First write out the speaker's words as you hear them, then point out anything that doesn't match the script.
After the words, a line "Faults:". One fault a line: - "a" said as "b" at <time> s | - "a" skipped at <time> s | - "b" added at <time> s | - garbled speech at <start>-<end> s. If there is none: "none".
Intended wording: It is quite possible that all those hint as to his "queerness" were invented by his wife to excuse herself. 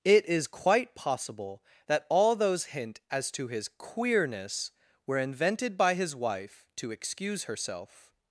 It is quite possible that all those hint as to his "queerness" were invented by his wife to excuse herself.
Faults:
none